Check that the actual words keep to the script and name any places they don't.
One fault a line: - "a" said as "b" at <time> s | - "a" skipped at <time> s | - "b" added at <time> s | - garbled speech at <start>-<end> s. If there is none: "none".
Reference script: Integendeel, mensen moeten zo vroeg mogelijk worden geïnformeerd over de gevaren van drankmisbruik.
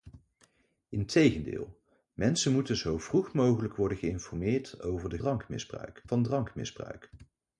- "gevaren" said as "drankmisbruik" at 5.2 s